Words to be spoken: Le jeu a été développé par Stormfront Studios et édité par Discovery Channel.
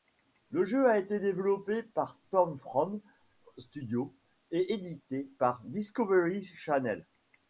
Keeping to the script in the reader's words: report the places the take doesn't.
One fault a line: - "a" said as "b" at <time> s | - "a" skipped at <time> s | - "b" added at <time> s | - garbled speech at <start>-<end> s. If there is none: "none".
none